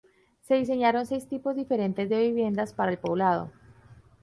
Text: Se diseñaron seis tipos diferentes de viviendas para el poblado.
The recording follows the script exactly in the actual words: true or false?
true